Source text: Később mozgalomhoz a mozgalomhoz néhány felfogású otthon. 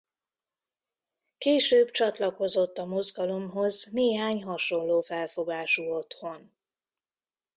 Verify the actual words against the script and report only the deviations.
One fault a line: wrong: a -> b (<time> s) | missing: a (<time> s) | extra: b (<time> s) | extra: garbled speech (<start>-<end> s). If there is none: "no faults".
wrong: mozgalomhoz -> csatlakozott (1.9 s)
extra: hasonló (4.4 s)